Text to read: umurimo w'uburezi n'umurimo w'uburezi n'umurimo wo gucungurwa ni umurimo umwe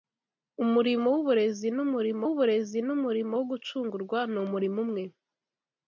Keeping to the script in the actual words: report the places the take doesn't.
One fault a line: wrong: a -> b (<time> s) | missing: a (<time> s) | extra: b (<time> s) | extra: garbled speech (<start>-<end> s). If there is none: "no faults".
no faults